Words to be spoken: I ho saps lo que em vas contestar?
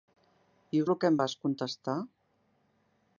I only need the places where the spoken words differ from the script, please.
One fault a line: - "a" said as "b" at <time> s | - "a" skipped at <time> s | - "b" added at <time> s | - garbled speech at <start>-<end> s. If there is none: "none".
- "saps" skipped at 0.9 s